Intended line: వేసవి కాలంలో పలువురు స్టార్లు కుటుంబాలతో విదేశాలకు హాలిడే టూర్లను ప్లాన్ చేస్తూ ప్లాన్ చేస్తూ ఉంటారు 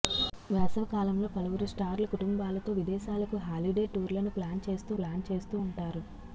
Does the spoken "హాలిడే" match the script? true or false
true